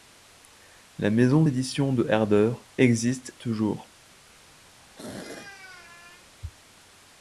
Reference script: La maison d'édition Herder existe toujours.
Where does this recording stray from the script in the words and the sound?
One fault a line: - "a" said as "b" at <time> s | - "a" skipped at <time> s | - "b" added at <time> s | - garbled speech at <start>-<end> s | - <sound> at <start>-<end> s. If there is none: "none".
- "de" added at 1.9 s
- throat clearing at 4.7-6.3 s